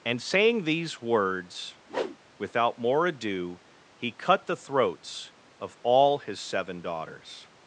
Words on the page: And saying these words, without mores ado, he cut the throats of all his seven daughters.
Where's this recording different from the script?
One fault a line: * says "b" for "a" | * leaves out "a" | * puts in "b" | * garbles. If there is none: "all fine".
* says "more" for "mores"